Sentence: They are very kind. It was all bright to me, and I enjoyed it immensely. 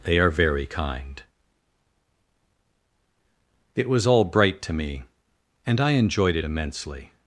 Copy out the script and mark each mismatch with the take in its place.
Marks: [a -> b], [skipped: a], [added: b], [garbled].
They are very kind. It was all bright to me, and I enjoyed it immensely.